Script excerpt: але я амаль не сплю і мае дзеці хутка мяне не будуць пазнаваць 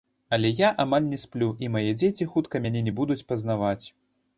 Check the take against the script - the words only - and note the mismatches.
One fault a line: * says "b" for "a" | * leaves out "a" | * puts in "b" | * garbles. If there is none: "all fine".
all fine